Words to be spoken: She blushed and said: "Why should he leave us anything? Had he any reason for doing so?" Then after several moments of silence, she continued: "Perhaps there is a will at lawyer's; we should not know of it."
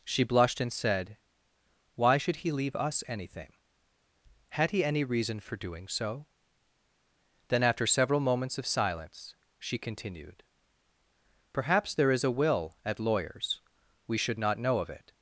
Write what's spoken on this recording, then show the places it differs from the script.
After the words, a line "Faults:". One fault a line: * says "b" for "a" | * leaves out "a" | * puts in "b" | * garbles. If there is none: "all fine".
She blushed and said: "Why should he leave us anything? Had he any reason for doing so?" Then after several moments of silence, she continued: "Perhaps there is a will at lawyer's; we should not know of it."
Faults:
all fine